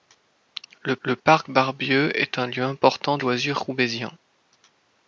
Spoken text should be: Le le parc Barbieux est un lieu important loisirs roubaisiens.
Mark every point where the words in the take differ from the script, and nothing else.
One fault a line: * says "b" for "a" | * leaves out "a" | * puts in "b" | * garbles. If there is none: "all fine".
all fine